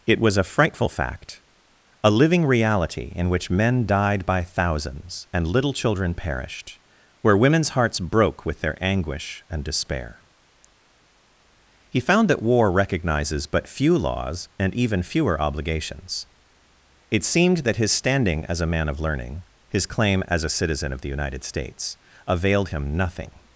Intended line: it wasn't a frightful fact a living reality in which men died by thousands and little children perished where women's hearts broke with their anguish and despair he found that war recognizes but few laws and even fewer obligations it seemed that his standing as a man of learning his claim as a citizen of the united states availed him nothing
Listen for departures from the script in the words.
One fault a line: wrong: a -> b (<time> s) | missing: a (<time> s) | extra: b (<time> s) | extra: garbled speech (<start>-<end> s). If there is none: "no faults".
wrong: wasn't -> was (0.2 s)